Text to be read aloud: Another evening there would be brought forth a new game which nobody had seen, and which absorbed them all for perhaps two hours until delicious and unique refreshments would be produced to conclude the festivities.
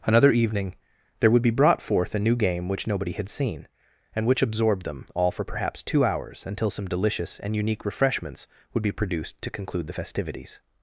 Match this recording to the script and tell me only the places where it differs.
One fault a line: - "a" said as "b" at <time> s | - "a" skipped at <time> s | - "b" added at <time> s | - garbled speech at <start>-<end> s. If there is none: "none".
- "some" added at 6.7 s